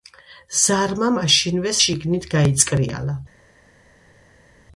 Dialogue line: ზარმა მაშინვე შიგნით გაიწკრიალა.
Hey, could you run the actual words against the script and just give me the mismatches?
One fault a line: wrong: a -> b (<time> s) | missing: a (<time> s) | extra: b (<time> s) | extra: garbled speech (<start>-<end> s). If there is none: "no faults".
no faults